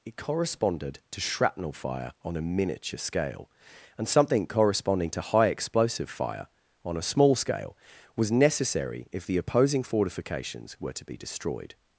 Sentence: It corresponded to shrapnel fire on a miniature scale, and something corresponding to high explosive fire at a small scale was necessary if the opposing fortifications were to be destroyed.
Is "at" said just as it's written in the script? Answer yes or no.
no